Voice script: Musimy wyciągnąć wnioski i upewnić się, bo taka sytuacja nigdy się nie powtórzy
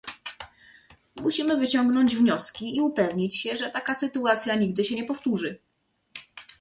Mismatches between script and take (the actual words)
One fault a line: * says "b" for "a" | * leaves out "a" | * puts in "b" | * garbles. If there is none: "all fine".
* says "że" for "bo"